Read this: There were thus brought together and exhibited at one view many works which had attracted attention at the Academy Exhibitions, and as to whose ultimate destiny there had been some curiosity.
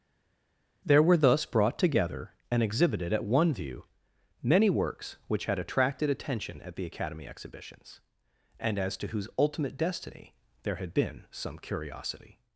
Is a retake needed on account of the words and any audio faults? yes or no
no